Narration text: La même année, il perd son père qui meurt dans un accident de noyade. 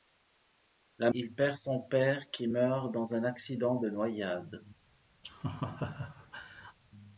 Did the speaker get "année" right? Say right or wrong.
wrong